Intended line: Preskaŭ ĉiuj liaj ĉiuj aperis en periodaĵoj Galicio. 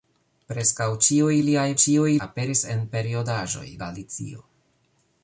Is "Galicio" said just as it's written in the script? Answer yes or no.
yes